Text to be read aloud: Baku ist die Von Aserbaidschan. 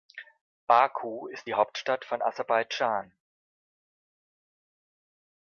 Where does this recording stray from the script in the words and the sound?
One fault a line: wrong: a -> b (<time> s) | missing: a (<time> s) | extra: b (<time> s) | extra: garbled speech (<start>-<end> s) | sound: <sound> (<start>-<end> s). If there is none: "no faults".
extra: Hauptstadt (1.5 s)